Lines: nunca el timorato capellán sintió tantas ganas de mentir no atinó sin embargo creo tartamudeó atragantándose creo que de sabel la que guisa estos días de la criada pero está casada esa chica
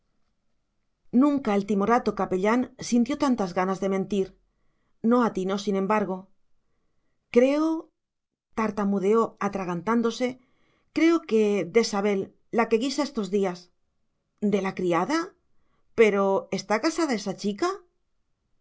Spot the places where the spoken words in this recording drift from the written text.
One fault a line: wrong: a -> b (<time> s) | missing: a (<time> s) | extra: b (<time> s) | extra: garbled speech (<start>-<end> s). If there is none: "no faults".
no faults